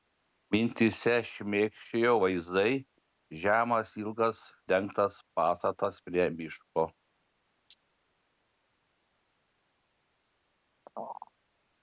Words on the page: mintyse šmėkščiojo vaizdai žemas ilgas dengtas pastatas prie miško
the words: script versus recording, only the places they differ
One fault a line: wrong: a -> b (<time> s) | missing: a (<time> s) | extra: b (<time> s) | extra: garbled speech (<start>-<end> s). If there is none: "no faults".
no faults